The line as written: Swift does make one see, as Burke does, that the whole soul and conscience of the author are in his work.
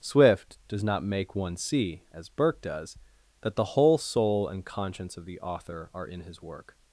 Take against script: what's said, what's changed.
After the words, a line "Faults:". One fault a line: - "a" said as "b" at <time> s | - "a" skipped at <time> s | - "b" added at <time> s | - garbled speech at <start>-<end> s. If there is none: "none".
Swift does not make one see, as Burke does, that the whole soul and conscience of the author are in his work.
Faults:
- "not" added at 0.8 s